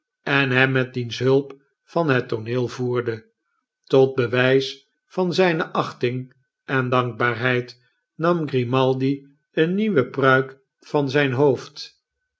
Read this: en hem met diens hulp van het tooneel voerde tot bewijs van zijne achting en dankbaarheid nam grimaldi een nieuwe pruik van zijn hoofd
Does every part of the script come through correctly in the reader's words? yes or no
yes